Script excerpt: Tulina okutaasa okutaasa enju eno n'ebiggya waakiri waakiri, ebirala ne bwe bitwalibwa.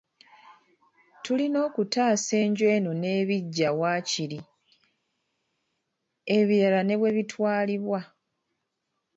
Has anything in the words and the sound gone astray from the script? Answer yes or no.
yes